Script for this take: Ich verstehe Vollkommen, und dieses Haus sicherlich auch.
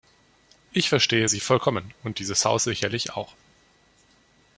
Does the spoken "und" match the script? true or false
true